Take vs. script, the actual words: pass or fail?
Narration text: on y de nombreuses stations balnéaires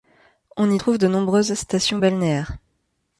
fail